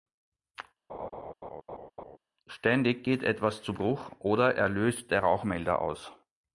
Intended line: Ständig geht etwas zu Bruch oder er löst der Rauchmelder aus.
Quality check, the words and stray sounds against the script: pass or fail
fail